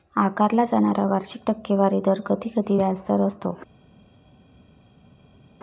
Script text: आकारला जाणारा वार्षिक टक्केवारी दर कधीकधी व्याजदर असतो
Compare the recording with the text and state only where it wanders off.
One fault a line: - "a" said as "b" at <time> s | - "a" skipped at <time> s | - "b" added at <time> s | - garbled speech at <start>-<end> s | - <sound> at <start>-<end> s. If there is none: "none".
none